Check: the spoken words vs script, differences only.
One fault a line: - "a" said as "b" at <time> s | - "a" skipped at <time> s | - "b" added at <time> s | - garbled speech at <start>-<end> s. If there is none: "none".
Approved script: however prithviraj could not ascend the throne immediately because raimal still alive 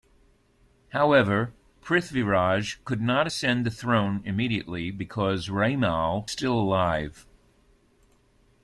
none